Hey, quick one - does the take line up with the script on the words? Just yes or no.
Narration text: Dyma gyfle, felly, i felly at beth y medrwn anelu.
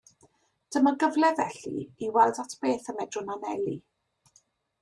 no